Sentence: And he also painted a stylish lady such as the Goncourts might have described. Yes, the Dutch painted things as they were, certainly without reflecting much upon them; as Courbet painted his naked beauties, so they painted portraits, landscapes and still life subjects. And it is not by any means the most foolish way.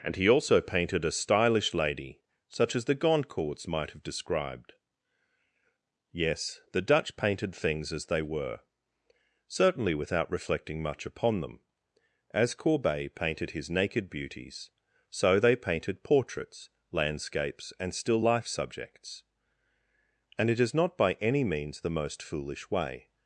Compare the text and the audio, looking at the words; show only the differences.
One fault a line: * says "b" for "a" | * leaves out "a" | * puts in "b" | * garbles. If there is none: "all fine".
all fine